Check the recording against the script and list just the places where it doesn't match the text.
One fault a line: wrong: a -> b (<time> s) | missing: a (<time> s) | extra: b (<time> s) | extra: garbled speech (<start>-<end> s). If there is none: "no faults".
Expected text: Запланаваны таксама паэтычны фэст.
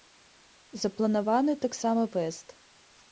missing: паэтычны (2.1 s)